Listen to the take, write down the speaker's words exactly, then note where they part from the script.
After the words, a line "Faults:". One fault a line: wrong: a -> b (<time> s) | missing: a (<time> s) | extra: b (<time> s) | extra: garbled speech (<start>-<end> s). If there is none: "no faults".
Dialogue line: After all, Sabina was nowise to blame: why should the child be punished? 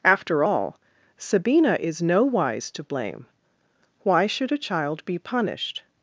After all, Sabina is nowise to blame: why should a child be punished?
Faults:
wrong: was -> is (1.8 s)
wrong: the -> a (4.5 s)